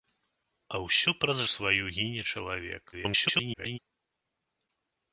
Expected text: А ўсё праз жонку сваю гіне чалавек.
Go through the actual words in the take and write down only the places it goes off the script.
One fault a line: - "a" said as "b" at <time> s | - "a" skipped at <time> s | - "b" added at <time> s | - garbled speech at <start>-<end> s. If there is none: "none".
- "жонку" skipped at 1.4 s
- garbled speech at 2.9-3.8 s